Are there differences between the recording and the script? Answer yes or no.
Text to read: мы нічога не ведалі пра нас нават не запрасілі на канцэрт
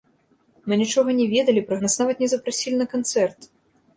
no